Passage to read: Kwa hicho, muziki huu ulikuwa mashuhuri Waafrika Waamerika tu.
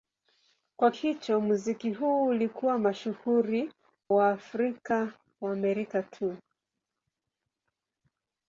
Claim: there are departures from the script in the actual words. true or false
false